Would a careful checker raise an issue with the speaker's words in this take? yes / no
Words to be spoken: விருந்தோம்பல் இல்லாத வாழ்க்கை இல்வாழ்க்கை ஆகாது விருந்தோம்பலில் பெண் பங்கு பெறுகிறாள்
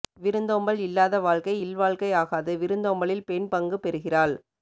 no